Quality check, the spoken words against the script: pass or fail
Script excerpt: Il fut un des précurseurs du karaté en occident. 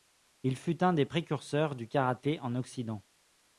pass